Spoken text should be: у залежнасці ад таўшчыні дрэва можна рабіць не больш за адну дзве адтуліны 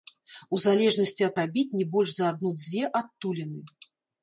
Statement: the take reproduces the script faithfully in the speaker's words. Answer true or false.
false